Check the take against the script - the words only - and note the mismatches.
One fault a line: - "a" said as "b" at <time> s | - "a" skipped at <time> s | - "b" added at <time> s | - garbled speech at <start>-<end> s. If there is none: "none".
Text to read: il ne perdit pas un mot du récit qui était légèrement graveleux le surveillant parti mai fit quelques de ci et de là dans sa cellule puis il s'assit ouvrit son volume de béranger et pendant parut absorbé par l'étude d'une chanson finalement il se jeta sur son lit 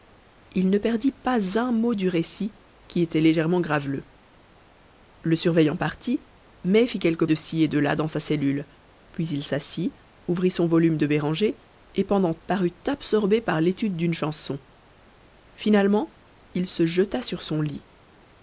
none